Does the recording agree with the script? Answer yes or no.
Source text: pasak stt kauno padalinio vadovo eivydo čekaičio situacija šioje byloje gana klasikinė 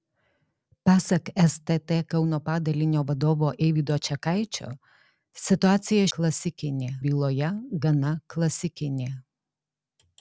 no